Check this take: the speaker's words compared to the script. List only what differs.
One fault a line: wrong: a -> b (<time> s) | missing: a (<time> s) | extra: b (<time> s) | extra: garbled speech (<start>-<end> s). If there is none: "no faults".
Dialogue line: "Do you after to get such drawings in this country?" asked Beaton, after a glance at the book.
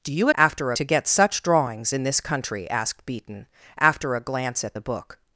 no faults